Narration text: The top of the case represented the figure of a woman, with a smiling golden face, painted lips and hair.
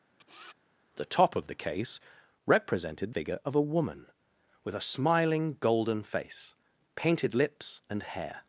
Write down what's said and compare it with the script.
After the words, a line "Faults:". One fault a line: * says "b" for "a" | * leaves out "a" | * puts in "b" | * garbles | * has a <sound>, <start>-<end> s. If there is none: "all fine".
The top of the case represented figure of a woman, with a smiling golden face, painted lips and hair.
Faults:
* has a sniff, 0.2-0.5 s
* leaves out "the"